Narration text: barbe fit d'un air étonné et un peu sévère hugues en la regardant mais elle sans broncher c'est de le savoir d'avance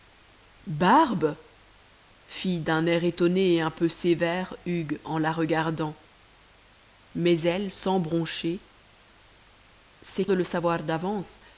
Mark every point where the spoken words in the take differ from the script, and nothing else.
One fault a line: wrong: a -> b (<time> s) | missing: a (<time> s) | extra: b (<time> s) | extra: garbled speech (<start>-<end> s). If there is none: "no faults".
no faults